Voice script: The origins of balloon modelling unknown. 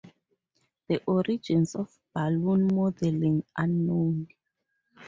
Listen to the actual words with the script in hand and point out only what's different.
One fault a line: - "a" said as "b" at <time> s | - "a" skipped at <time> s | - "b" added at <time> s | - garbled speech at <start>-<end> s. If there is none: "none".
none